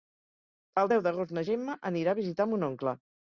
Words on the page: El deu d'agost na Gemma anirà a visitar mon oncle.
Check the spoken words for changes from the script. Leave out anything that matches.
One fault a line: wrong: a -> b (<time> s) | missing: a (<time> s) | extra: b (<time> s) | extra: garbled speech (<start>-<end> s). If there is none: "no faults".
no faults